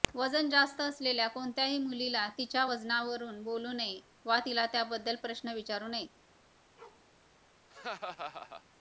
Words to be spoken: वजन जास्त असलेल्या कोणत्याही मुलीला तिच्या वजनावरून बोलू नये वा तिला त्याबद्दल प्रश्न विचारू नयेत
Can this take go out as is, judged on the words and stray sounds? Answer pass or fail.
fail